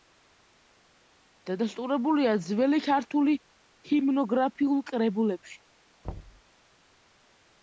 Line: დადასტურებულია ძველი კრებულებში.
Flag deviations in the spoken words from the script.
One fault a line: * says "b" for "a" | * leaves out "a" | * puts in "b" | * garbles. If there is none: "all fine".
* puts in "ქართული ჰიმნოგრაფიულ"